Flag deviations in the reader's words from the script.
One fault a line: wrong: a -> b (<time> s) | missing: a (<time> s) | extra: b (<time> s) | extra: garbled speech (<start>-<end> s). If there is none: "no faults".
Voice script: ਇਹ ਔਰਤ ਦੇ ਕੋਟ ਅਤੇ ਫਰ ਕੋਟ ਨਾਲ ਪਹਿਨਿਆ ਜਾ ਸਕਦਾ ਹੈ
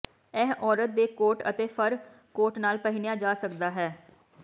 no faults